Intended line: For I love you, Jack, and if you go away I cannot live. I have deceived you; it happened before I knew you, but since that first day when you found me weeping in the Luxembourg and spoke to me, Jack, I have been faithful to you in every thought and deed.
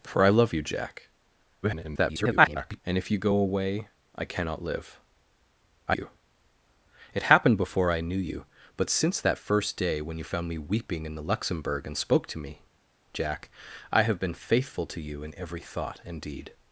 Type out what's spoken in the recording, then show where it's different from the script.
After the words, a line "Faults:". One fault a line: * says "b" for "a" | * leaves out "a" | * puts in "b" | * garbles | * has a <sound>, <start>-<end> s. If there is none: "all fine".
For I love you, Jack, [garbled] and if you go away I cannot live. I you; it happened before I knew you, but since that first day when you found me weeping in the Luxembourg and spoke to me, Jack, I have been faithful to you in every thought and deed.
Faults:
* garbles
* leaves out "have deceived"